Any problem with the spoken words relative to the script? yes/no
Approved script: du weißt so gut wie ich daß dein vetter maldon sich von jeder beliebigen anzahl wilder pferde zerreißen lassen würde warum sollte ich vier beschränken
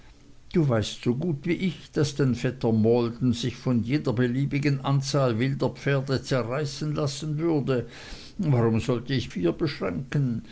no